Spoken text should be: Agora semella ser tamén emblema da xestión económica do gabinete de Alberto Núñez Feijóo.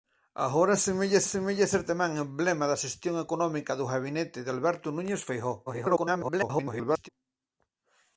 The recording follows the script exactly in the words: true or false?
false